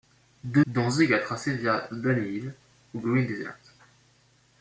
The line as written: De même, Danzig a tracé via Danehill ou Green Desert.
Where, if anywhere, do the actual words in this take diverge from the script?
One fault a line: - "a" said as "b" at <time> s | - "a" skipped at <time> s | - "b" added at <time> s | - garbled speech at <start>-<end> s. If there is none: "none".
- "même" skipped at 0.6 s